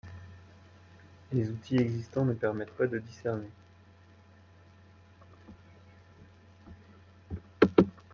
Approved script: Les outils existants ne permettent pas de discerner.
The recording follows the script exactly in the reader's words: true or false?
true